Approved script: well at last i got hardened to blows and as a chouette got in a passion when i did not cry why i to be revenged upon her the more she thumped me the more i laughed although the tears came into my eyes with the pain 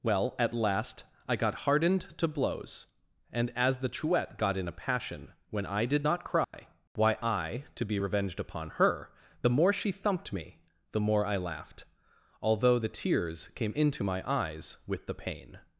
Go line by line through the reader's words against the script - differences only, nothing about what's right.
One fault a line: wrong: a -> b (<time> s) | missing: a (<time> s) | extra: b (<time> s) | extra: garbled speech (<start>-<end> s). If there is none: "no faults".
wrong: a -> the (3.8 s)